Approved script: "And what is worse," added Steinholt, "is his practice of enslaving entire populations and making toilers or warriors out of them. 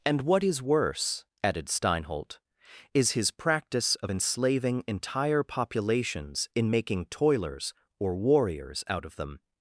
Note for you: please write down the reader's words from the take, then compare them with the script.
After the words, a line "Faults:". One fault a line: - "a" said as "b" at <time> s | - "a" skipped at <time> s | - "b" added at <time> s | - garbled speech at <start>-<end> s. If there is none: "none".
"And what is worse," added Steinholt, "is his practice of enslaving entire populations in making toilers or warriors out of them.
Faults:
- "and" said as "in" at 6.5 s